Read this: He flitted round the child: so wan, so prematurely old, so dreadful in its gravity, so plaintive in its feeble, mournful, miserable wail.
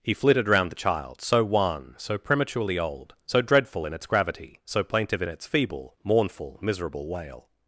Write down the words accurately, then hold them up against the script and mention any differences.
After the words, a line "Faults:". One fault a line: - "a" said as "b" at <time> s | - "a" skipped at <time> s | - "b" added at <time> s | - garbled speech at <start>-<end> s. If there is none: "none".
He flitted round the child: so wan, so prematurely old, so dreadful in its gravity, so plaintive in its feeble, mournful, miserable wail.
Faults:
none